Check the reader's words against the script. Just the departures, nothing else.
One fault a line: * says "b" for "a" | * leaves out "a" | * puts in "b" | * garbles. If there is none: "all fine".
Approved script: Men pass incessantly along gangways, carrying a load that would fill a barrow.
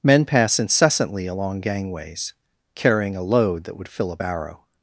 all fine